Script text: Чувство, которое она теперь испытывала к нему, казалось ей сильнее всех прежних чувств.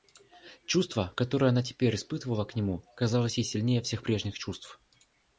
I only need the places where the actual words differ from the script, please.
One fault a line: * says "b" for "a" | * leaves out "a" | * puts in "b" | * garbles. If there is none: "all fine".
all fine